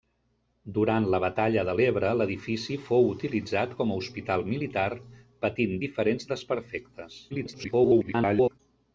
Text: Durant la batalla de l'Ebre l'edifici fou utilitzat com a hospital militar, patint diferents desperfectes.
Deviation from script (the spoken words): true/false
true